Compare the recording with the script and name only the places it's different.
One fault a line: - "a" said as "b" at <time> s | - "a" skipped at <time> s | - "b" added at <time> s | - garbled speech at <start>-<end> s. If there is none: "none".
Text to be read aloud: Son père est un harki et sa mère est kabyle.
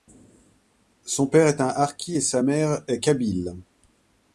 none